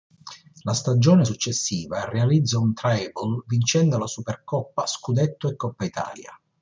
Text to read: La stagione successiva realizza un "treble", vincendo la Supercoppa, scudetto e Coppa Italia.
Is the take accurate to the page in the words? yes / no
yes